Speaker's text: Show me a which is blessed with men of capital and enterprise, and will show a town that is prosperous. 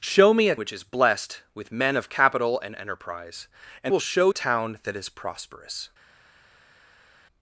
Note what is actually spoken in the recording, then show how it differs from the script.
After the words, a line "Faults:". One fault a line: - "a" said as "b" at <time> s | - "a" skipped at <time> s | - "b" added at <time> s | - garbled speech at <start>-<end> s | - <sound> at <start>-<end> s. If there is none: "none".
Show me a which is blessed with men of capital and enterprise, and will show a town that is prosperous.
Faults:
none